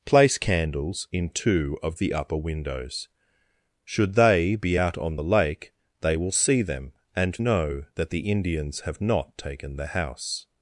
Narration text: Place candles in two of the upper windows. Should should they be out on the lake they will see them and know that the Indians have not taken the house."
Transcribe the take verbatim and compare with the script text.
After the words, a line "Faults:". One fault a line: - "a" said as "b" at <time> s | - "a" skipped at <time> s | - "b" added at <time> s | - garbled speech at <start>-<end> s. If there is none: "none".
Place candles in two of the upper windows. Should they be out on the lake they will see them and know that the Indians have not taken the house."
Faults:
- "should" skipped at 4.2 s